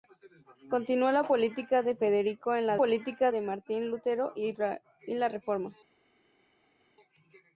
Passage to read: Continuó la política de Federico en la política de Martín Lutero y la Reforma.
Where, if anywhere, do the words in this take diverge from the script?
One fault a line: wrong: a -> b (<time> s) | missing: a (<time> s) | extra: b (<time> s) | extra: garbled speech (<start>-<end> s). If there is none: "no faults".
no faults